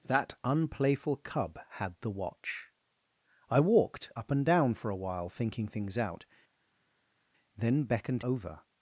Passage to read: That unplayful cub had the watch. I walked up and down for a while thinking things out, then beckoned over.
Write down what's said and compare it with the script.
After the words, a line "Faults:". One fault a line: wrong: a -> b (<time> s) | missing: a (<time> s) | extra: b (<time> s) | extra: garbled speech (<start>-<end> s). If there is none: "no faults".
That unplayful cub had the watch. I walked up and down for a while thinking things out, then beckoned over.
Faults:
no faults